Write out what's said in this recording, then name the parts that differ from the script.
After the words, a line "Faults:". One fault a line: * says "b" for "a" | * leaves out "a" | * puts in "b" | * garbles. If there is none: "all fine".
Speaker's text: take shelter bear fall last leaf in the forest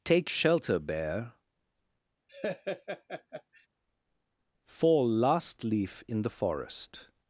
take shelter bear fall last leaf in the forest
Faults:
all fine